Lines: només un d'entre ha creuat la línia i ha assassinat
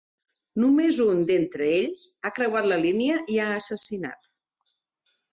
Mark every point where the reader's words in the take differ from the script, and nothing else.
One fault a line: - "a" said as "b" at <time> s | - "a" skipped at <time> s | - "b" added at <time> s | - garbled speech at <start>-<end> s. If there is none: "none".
- "ells" added at 1.7 s